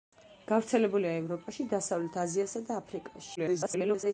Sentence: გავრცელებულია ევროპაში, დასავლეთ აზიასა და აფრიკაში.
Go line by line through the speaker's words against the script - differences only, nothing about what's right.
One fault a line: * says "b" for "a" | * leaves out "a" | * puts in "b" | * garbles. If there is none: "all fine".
* garbles